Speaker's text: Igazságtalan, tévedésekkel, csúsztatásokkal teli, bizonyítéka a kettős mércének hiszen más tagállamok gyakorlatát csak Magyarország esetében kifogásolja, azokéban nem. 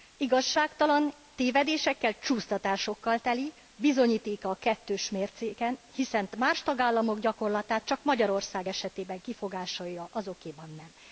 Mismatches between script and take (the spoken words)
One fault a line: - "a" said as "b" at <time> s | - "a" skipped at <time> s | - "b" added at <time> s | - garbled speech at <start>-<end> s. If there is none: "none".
none